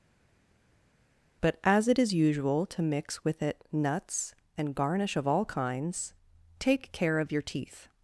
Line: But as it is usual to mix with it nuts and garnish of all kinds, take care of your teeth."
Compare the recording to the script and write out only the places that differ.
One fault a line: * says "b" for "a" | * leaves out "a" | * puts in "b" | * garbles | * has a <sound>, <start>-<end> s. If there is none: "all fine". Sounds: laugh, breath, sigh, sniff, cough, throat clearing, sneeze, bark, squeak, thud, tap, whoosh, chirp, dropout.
all fine